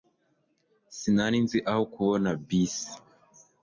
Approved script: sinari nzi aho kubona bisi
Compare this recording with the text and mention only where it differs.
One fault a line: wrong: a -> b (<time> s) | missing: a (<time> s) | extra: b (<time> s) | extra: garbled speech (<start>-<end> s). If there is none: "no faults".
no faults